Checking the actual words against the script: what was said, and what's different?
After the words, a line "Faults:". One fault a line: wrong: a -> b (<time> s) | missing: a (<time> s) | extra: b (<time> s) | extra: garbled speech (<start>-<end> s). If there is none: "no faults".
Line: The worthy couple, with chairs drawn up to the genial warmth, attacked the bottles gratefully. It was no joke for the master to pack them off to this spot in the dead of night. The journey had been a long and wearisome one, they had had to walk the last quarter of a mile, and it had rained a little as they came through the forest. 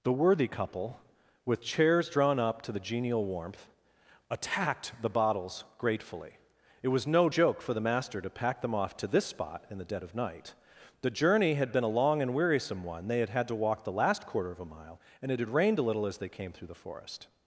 The worthy couple, with chairs drawn up to the genial warmth, attacked the bottles gratefully. It was no joke for the master to pack them off to this spot in the dead of night. The journey had been a long and wearisome one, they had had to walk the last quarter of a mile, and it had rained a little as they came through the forest.
Faults:
no faults